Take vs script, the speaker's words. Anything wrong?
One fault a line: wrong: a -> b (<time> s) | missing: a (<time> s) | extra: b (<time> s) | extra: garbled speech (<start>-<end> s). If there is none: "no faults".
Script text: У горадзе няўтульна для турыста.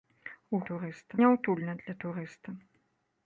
wrong: горадзе -> турыста (0.7 s)